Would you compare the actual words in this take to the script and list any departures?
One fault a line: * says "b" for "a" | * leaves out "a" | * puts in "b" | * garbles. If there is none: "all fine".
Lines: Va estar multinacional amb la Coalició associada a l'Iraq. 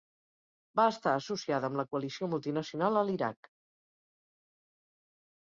* says "associada" for "multinacional"
* says "multinacional" for "associada"